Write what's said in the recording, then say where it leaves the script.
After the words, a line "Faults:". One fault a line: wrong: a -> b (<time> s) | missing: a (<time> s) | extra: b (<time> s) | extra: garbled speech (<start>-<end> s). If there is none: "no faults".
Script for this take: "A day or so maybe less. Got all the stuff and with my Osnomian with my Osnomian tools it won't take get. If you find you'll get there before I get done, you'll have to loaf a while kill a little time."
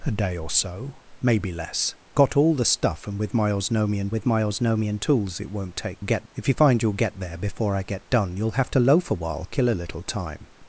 "A day or so maybe less. Got all the stuff and with my Osnomian with my Osnomian tools it won't take get. If you find you'll get there before I get done, you'll have to loaf a while kill a little time."
Faults:
no faults